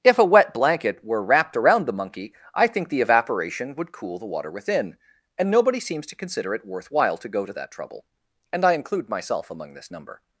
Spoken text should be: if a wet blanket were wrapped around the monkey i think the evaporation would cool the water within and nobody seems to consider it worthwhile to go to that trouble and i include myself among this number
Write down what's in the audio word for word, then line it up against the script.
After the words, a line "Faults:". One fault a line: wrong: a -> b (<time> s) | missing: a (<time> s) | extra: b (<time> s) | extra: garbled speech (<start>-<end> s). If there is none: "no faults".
if a wet blanket were wrapped around the monkey i think the evaporation would cool the water within and nobody seems to consider it worthwhile to go to that trouble and i include myself among this number
Faults:
no faults